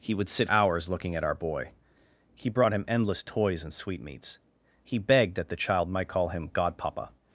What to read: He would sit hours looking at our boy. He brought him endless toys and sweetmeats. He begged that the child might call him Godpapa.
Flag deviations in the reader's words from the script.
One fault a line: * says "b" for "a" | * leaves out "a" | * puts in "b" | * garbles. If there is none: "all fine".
all fine